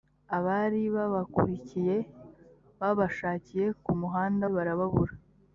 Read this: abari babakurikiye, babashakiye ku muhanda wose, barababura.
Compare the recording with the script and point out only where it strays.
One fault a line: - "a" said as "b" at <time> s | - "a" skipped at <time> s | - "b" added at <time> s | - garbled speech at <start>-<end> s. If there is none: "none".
- "wose" skipped at 4.5 s